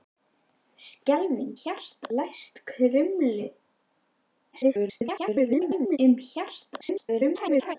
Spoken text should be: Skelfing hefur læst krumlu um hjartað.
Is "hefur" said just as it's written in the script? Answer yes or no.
no